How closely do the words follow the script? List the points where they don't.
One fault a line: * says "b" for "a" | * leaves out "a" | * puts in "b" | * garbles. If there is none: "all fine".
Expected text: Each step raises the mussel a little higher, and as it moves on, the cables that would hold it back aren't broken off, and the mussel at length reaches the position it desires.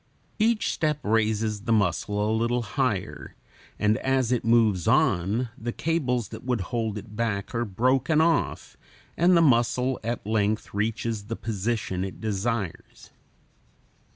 * says "are" for "aren't"